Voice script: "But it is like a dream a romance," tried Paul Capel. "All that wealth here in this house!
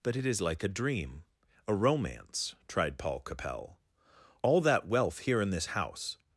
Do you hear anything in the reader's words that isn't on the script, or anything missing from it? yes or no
no